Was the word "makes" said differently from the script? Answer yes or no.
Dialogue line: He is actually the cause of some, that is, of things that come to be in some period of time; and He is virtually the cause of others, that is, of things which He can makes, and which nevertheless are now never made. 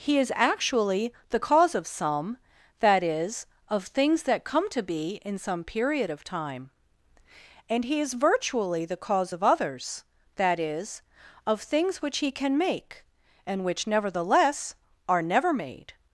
yes